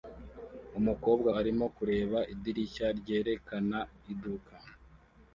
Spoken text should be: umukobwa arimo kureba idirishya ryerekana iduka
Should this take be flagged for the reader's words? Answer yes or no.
no